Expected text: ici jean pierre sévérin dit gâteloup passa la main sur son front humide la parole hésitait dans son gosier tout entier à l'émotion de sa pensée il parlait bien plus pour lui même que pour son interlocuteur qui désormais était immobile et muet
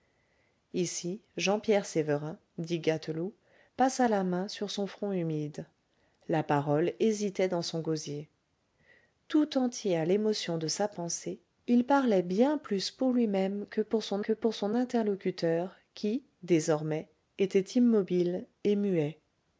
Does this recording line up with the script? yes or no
no